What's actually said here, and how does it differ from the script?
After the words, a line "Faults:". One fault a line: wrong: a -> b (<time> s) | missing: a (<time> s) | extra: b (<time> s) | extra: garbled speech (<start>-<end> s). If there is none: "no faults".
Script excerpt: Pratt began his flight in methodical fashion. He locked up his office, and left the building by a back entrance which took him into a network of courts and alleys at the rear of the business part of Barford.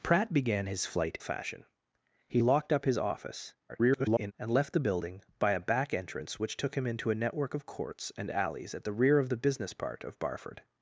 Pratt began his flight fashion. He locked up his office, [garbled] and left the building by a back entrance which took him into a network of courts and alleys at the rear of the business part of Barford.
Faults:
missing: in methodical (1.2 s)
extra: garbled speech (3.7-4.3 s)